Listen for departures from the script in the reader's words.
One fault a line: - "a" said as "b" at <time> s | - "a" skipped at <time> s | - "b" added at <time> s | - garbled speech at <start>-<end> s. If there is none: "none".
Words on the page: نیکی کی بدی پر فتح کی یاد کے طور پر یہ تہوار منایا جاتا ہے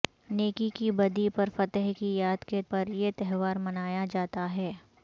- "طور" skipped at 2.6 s